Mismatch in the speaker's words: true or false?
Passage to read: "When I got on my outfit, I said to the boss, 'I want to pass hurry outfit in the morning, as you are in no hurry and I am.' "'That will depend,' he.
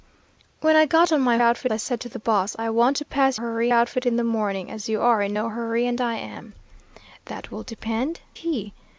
false